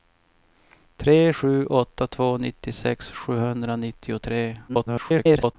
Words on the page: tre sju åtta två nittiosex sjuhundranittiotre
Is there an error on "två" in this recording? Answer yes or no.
no